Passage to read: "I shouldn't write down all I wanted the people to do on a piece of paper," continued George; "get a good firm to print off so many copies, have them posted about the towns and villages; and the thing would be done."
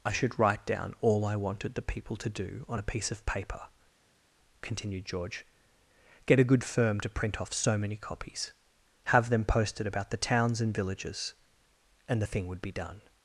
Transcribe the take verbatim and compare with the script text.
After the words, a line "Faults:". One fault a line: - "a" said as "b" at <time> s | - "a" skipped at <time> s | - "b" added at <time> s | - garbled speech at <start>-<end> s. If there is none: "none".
"I should write down all I wanted the people to do on a piece of paper," continued George; "get a good firm to print off so many copies, have them posted about the towns and villages; and the thing would be done."
Faults:
- "shouldn't" said as "should" at 0.1 s